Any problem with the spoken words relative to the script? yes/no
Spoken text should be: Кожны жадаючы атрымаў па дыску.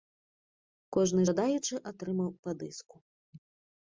no